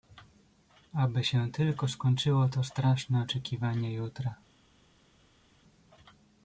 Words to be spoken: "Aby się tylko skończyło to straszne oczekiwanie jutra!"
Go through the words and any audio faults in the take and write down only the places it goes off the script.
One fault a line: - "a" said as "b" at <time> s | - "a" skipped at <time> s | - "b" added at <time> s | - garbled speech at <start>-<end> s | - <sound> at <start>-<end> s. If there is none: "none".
none